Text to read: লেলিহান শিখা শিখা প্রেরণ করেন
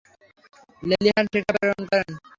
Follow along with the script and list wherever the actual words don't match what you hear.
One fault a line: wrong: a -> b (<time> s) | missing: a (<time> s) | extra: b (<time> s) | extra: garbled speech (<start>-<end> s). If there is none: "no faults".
missing: শিখা (1.5 s)